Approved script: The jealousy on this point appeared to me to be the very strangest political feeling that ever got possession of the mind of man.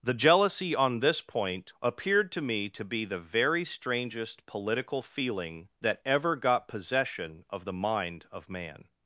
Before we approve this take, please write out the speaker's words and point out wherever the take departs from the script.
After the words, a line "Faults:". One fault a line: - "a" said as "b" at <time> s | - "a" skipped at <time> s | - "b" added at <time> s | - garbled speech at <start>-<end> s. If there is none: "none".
The jealousy on this point appeared to me to be the very strangest political feeling that ever got possession of the mind of man.
Faults:
none